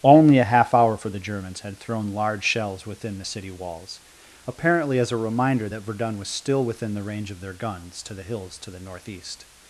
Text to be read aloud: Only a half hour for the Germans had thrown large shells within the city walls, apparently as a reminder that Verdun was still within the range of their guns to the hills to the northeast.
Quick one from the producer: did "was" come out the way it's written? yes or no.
yes